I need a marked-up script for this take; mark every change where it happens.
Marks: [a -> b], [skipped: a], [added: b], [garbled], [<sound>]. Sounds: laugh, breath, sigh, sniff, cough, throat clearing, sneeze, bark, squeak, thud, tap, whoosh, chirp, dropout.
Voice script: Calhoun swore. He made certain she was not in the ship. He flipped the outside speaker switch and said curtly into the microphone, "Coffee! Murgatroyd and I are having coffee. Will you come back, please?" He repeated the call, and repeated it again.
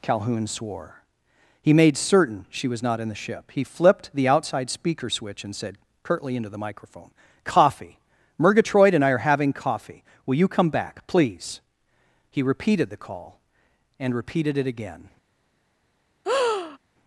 Calhoun swore. He made certain she was not in the ship. He flipped the outside speaker switch and said curtly into the microphone, "Coffee! Murgatroyd and I are having coffee. Will you come back, please?" He repeated the call, and repeated it again. [breath]